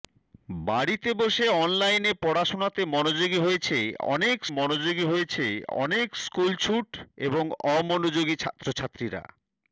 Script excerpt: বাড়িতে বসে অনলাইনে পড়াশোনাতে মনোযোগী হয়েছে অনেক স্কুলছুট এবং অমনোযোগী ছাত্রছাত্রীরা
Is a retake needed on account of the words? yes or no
yes